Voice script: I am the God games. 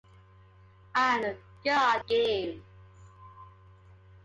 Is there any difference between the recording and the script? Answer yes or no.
no